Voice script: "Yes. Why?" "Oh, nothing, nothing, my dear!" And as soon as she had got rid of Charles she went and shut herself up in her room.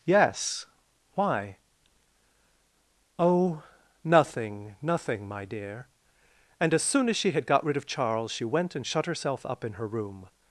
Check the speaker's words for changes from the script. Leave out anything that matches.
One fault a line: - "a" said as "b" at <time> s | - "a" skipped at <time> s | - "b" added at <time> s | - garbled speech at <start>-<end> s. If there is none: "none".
none